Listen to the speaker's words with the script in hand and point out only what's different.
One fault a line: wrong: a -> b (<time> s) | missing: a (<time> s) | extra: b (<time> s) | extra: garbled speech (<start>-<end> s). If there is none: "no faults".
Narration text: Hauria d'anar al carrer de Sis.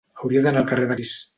no faults